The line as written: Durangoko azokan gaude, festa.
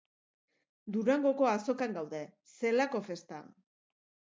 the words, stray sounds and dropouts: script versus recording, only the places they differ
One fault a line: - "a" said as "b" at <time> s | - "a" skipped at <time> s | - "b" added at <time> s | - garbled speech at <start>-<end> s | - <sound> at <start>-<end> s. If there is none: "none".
- "zelako" added at 2.5 s